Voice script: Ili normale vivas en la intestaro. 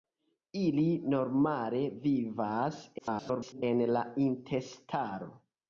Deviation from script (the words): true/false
true